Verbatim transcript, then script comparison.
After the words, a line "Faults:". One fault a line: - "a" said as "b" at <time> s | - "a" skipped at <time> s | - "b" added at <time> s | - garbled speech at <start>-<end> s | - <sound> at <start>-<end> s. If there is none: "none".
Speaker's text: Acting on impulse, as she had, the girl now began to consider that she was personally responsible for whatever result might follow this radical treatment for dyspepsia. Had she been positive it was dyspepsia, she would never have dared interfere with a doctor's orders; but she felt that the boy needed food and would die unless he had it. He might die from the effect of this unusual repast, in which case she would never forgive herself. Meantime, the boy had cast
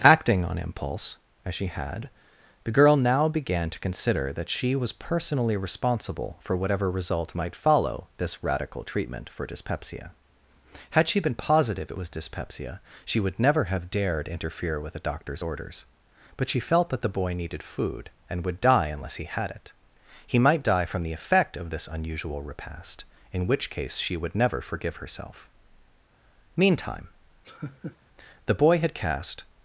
Acting on impulse, as she had, the girl now began to consider that she was personally responsible for whatever result might follow this radical treatment for dyspepsia. Had she been positive it was dyspepsia, she would never have dared interfere with a doctor's orders; but she felt that the boy needed food and would die unless he had it. He might die from the effect of this unusual repast, in which case she would never forgive herself. Meantime, the boy had cast
Faults:
- laugh at 27.4-28.0 s